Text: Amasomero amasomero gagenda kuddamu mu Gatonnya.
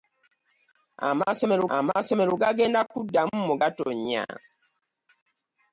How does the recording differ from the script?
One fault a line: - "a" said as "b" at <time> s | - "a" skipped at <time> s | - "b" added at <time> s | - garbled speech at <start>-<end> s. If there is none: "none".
none